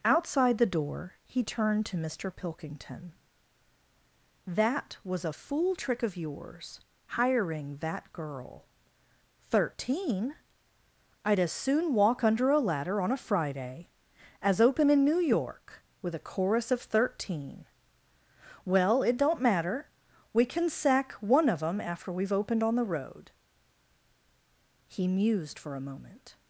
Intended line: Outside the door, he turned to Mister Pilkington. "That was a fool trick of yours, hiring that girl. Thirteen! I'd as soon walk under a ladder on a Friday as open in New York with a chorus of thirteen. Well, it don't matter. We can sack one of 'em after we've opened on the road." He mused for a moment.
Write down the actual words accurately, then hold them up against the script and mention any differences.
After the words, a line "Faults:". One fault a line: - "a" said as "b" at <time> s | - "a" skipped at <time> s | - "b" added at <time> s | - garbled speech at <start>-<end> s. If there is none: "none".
Outside the door, he turned to Mister Pilkington. "That was a fool trick of yours, hiring that girl. Thirteen! I'd as soon walk under a ladder on a Friday as open in New York with a chorus of thirteen. Well, it don't matter. We can sack one of 'em after we've opened on the road." He mused for a moment.
Faults:
none